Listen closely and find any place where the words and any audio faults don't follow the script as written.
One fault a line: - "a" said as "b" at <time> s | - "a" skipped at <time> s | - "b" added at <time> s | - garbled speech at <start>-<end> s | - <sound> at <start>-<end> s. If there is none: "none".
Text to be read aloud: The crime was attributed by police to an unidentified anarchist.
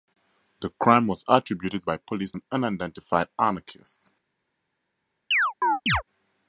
- "to" skipped at 2.3 s
- chirp at 5.3-6.0 s